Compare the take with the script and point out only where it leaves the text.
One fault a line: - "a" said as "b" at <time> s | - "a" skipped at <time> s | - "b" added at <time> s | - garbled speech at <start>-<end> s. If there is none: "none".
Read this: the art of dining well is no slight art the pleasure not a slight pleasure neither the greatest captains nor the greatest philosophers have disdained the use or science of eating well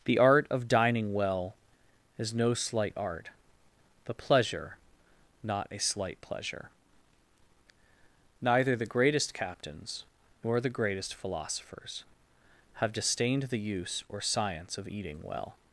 none